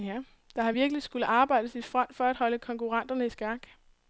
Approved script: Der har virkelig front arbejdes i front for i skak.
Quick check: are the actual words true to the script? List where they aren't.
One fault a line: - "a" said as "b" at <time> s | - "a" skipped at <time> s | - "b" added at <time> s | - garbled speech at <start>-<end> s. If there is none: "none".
- "front" said as "skullet" at 1.0 s
- "at holde konkurrenterne" added at 2.2 s